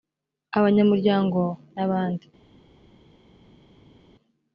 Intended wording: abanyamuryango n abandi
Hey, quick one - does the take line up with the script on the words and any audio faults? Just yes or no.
yes